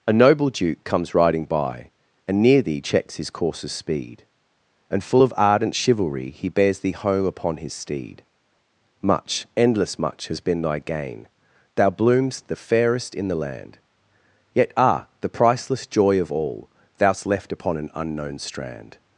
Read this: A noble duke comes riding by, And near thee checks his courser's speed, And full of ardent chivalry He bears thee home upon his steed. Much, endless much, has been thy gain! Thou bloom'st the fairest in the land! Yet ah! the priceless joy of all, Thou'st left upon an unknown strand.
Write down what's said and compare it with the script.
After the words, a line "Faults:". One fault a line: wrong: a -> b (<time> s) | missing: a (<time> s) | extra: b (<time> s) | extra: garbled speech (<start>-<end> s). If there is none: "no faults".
A noble duke comes riding by, And near thee checks his courser's speed, And full of ardent chivalry He bears thee home upon his steed. Much, endless much, has been thy gain! Thou bloom'st the fairest in the land! Yet ah! the priceless joy of all, Thou'st left upon an unknown strand.
Faults:
no faults